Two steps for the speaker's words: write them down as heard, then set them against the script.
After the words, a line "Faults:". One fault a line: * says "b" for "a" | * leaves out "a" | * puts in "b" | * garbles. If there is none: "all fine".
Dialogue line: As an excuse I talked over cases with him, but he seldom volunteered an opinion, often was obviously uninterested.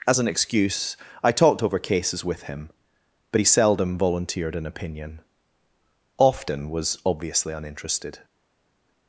As an excuse I talked over cases with him, but he seldom volunteered an opinion, often was obviously uninterested.
Faults:
all fine